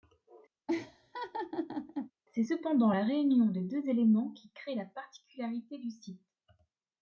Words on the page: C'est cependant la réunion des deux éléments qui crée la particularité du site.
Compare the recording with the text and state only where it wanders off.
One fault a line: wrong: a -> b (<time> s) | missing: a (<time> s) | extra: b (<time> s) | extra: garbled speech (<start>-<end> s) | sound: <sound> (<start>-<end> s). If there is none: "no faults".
sound: laugh (0.7-2.1 s)